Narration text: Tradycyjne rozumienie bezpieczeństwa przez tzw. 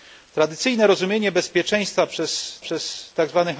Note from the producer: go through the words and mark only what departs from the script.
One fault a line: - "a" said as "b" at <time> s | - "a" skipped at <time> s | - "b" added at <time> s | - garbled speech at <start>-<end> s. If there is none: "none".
- "przez" added at 2.6 s